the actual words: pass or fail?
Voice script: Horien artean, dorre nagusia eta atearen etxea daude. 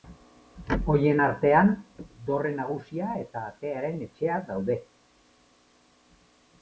pass